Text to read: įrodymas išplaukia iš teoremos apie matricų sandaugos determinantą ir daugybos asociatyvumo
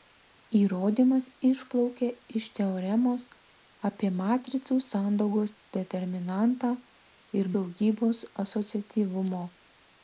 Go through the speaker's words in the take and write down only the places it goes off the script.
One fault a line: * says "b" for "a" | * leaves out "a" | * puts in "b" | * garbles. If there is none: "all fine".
all fine